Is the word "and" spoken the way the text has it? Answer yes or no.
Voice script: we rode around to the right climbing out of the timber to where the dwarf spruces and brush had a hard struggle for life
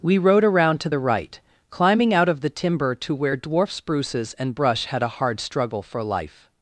yes